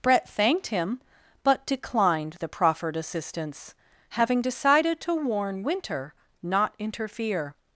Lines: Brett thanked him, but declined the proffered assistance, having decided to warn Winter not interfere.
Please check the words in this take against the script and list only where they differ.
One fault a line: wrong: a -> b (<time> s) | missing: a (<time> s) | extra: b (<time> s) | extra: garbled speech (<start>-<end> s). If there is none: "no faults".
no faults